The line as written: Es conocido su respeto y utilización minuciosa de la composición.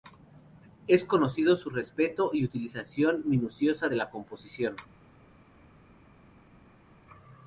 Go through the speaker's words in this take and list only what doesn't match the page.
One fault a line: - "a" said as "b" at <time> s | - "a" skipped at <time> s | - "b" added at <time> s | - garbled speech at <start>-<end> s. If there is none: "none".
none